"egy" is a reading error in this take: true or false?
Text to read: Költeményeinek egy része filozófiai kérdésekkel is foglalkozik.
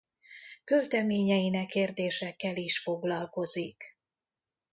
true